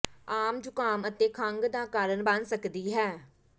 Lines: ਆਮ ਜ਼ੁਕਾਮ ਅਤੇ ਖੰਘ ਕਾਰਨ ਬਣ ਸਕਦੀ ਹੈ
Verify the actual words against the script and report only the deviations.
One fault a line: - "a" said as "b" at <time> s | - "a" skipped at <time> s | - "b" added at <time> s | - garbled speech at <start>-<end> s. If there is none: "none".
- "ਦਾ" added at 1.7 s